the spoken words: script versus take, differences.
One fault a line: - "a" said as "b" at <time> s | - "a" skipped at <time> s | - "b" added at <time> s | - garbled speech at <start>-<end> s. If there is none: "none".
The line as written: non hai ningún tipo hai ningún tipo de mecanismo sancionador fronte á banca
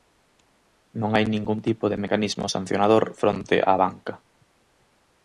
- "hai ningún tipo" skipped at 1.9 s